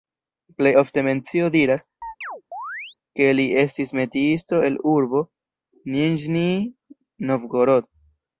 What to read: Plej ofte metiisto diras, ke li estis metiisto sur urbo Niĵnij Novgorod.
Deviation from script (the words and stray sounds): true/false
true